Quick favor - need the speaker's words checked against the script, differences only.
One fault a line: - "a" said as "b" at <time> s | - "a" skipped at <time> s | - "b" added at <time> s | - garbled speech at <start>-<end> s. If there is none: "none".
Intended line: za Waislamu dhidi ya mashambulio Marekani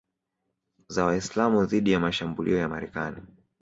- "ya" added at 2.6 s